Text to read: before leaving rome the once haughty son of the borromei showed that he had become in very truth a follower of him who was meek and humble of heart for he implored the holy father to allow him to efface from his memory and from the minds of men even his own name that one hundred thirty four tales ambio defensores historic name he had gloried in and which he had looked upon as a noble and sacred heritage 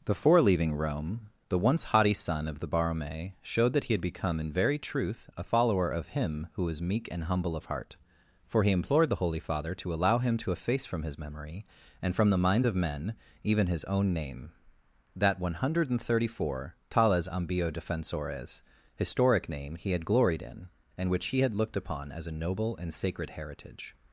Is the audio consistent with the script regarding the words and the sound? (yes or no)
yes